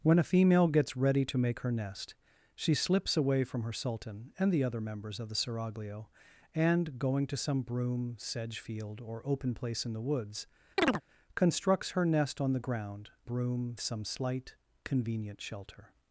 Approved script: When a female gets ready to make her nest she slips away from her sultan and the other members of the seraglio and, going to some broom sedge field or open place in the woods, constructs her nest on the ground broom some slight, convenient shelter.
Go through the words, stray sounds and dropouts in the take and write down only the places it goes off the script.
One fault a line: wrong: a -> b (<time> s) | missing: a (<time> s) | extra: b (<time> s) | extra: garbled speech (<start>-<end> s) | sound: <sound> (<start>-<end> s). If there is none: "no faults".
sound: chirp (10.8-11.0 s)